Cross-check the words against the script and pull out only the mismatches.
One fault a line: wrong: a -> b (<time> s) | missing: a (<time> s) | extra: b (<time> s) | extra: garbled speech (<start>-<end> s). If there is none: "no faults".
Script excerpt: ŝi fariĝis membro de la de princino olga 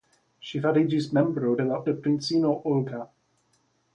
no faults